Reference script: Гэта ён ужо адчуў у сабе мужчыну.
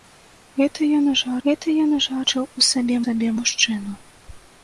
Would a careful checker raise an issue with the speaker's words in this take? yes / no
yes